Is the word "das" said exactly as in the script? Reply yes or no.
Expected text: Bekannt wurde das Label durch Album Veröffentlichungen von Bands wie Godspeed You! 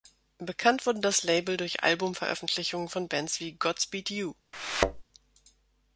yes